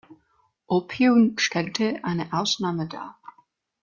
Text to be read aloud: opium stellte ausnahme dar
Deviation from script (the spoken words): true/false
true